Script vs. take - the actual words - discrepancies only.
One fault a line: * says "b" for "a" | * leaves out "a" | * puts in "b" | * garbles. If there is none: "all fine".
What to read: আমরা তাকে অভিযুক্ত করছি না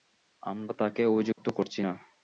all fine